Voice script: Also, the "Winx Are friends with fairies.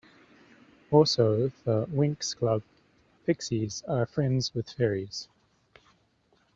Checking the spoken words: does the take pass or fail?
fail